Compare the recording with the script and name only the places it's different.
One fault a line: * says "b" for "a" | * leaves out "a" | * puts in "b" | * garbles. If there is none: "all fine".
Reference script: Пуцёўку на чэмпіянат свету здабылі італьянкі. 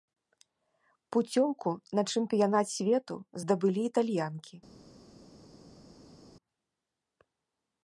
all fine